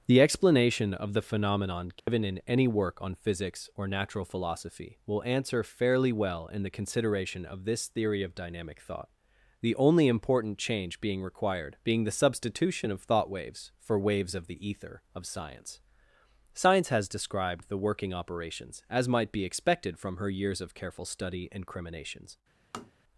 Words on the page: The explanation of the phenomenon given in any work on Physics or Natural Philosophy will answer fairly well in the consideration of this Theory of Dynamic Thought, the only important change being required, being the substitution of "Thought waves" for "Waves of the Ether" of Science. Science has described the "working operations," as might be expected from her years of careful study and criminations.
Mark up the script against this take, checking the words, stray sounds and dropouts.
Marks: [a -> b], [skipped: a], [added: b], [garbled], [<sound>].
The explanation of the phenomenon given [dropout] in any work on Physics or Natural Philosophy will answer fairly well in the consideration of this Theory of Dynamic Thought, the only important change being required, being the substitution of "Thought waves" for "Waves of the Ether" of Science. Science has described the "working operations," as might be expected from her years of careful study and criminations. [tap]